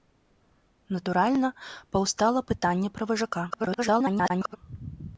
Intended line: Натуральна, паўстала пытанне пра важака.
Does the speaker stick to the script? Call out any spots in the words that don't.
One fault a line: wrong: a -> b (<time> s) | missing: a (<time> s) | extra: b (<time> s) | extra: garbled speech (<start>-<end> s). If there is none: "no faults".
extra: garbled speech (3.5-4.6 s)